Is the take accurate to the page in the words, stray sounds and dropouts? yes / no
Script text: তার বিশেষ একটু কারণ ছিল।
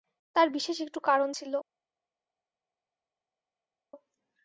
yes